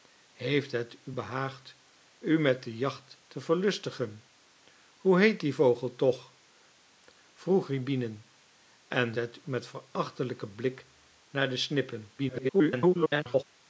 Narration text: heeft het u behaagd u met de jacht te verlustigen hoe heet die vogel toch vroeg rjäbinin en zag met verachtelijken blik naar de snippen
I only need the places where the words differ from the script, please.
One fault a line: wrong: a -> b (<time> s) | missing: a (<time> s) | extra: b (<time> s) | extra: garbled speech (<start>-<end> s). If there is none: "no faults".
wrong: zag -> het (9.1 s)
extra: garbled speech (12.2-13.4 s)